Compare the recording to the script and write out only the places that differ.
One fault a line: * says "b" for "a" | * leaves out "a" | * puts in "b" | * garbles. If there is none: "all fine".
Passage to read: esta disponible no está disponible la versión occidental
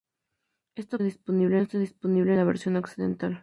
all fine